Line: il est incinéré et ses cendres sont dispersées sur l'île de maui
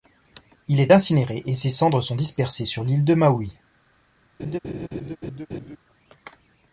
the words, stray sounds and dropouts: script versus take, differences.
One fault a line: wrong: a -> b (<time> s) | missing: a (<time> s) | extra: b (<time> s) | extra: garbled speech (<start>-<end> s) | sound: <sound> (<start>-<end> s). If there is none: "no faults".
sound: laugh (4.4-5.8 s)